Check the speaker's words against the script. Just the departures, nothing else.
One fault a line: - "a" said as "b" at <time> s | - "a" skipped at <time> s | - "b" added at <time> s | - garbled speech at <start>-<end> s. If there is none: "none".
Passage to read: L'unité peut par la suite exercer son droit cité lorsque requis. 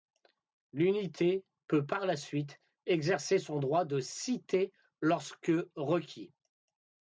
- "de" added at 3.8 s